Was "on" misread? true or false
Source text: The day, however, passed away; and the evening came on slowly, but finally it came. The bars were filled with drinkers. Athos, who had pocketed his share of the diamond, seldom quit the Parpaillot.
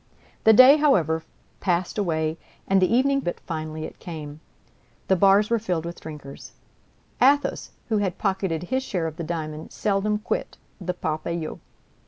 true